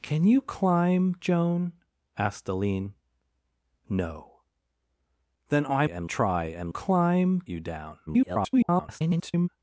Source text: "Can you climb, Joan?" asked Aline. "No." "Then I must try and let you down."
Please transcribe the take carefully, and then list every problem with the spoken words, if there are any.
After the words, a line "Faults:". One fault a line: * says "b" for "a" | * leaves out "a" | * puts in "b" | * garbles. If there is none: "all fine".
"Can you climb, Joan?" asked Aline. "No." "Then I and try and climb you down." [garbled]
Faults:
* says "and" for "must"
* says "climb" for "let"
* garbles